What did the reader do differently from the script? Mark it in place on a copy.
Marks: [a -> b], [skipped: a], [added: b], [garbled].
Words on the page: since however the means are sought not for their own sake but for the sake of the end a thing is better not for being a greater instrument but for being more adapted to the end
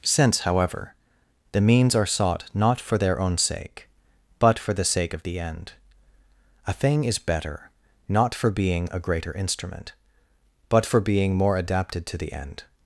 since however the means are sought not for their own sake but for the sake of the end a thing is better not for being a greater instrument but for being more adapted to the end